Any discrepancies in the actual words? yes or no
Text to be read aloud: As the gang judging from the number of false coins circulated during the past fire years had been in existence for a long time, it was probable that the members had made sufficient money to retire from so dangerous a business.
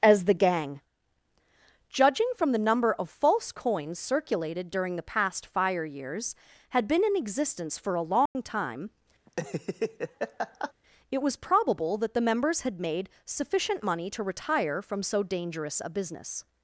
no